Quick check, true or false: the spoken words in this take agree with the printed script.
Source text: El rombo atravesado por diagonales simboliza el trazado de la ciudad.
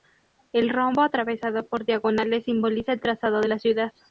true